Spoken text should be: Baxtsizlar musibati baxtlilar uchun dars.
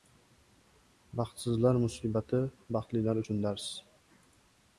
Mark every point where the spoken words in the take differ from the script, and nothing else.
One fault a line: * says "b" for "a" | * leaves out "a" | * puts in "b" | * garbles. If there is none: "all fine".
all fine